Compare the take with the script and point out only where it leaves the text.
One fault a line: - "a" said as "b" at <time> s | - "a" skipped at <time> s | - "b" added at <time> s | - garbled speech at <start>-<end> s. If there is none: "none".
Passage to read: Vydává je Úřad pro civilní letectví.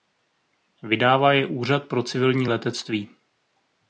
none